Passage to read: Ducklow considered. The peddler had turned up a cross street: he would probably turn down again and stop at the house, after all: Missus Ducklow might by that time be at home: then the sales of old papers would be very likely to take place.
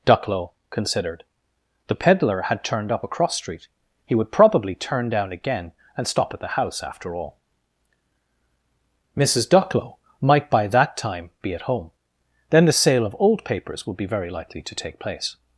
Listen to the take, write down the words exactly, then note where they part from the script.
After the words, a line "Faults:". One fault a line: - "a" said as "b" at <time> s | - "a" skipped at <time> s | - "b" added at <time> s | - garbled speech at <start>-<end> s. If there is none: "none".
Ducklow considered. The peddler had turned up a cross street: he would probably turn down again and stop at the house, after all: Missus Ducklow might by that time be at home: then the sale of old papers would be very likely to take place.
Faults:
- "sales" said as "sale" at 12.7 s